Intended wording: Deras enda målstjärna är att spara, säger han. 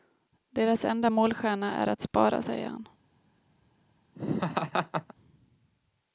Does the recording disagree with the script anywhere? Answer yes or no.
no